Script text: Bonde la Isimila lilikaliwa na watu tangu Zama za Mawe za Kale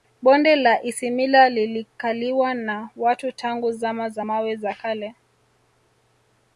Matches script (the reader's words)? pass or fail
pass